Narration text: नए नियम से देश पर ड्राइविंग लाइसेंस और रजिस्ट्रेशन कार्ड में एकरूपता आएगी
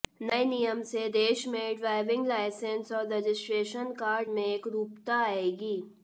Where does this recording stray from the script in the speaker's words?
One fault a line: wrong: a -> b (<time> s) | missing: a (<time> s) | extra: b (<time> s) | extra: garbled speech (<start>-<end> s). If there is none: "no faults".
wrong: पर -> में (1.5 s)